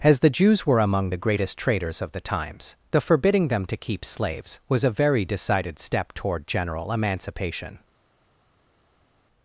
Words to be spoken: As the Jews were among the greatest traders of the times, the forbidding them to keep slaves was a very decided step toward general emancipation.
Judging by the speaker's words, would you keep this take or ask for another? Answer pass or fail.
pass